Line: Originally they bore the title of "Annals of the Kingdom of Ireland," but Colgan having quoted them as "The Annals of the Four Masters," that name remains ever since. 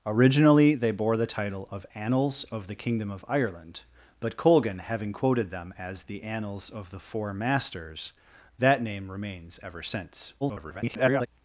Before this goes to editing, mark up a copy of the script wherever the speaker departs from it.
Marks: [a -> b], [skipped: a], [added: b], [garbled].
Originally they bore the title of "Annals of the Kingdom of Ireland," but Colgan having quoted them as "The Annals of the Four Masters," that name remains ever since. [garbled]